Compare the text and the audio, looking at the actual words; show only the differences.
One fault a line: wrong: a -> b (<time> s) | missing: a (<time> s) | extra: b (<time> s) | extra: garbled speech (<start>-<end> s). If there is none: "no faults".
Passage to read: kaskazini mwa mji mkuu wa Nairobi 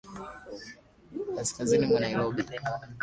missing: mji mkuu wa (2.0 s)